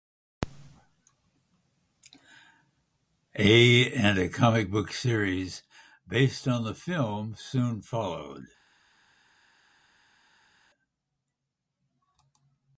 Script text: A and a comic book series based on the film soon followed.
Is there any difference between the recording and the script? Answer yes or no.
no